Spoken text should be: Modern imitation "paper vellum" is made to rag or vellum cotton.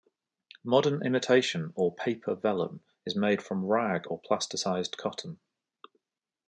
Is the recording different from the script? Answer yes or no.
yes